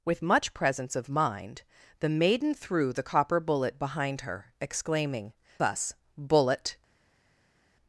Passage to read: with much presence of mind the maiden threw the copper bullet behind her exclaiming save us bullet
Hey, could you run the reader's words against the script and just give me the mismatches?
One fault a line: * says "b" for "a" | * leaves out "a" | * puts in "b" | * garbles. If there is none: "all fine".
* leaves out "save"